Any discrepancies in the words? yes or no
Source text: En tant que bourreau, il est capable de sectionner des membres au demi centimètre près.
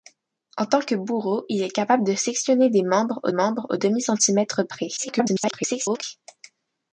yes